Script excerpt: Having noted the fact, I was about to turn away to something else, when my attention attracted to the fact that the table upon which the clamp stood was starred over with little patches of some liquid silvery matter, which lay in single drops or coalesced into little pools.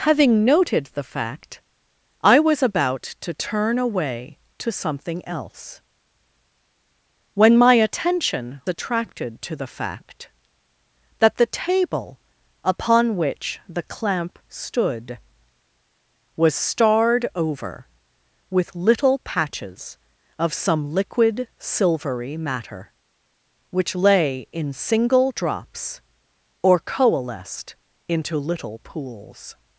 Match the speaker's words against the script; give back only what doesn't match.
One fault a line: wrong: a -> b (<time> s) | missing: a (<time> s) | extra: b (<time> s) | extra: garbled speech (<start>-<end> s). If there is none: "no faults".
no faults